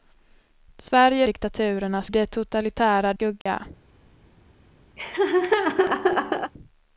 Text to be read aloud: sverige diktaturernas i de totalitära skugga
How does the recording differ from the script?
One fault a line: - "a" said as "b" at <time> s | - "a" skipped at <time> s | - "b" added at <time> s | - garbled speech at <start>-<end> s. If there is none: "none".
none